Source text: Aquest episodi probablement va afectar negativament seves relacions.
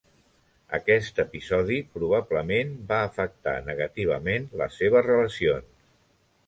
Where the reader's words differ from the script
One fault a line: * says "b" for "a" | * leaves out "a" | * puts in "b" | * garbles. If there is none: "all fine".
* puts in "les"